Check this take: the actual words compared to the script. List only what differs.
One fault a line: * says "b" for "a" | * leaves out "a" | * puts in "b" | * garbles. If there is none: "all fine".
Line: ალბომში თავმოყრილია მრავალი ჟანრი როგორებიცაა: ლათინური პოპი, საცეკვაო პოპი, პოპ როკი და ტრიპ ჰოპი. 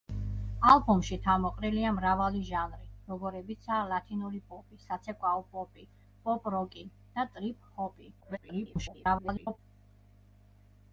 * garbles